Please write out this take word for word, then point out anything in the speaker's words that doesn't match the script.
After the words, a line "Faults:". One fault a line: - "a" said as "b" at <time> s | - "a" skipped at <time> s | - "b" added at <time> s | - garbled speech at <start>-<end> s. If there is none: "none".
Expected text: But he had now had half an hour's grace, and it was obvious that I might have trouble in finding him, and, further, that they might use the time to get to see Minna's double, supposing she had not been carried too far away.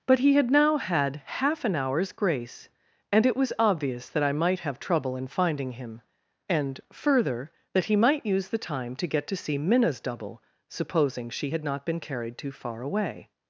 But he had now had half an hour's grace, and it was obvious that I might have trouble in finding him, and, further, that he might use the time to get to see Minna's double, supposing she had not been carried too far away.
Faults:
- "they" said as "he" at 7.8 s